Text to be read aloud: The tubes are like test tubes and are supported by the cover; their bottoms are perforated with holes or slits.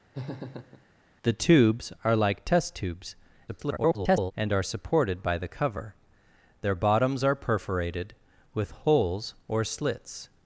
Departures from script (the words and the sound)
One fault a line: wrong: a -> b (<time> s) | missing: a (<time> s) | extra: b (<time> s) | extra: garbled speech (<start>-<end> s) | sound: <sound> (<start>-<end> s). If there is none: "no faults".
sound: laugh (0.1-0.9 s)
extra: garbled speech (3.5-4.3 s)